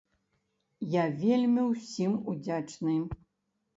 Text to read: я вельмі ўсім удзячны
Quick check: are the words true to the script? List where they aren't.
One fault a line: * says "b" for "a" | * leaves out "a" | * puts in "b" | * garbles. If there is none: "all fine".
all fine